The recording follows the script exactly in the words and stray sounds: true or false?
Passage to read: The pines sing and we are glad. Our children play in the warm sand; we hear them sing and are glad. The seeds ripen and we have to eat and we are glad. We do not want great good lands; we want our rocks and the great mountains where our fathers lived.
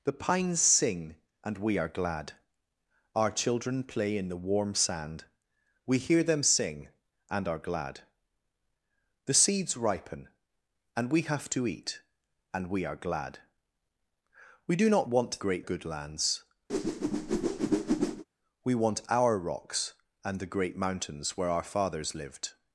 false